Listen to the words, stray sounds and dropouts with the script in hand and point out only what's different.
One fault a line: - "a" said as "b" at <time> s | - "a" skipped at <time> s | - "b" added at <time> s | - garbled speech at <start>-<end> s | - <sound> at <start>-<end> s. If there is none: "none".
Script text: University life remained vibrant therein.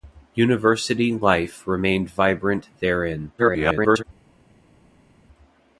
- garbled speech at 3.4-4.0 s